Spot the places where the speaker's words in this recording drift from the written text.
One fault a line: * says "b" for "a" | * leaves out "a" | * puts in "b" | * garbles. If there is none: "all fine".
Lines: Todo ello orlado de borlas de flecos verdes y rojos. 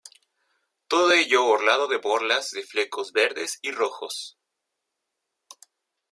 all fine